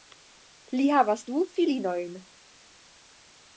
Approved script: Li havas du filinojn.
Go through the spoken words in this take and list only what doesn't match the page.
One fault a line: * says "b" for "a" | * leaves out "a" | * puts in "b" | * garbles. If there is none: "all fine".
all fine